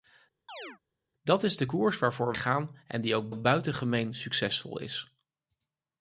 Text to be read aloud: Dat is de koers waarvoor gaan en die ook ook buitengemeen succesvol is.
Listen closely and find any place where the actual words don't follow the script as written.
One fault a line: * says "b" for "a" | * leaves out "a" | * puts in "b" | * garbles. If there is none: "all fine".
all fine